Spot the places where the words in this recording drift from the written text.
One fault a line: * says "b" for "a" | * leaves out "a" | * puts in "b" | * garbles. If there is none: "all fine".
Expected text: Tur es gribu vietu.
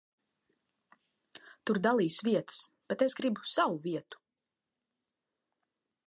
* puts in "dalīs vietas bet"
* puts in "savu"